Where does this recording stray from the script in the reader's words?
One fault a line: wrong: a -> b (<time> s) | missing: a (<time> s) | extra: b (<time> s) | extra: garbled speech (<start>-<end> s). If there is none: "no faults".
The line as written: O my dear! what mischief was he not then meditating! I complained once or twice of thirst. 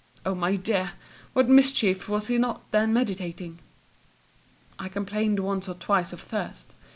no faults